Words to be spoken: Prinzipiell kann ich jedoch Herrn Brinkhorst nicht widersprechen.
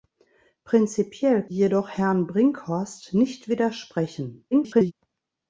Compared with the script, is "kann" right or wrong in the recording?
wrong